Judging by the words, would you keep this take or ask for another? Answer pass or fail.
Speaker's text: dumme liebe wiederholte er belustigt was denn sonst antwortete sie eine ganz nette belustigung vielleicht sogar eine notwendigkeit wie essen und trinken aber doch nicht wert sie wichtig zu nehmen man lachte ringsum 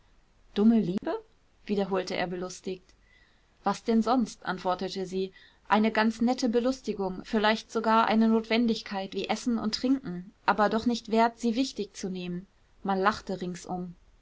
pass